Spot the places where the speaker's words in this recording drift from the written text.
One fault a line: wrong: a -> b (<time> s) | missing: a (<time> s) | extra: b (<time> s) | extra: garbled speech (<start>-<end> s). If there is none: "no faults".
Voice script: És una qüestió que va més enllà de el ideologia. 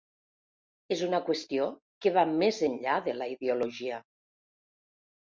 wrong: el -> la (3.2 s)